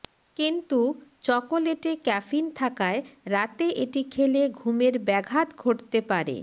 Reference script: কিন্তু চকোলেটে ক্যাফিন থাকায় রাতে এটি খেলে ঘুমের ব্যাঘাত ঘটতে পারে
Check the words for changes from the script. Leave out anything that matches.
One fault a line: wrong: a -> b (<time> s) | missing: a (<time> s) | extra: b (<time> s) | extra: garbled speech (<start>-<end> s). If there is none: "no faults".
no faults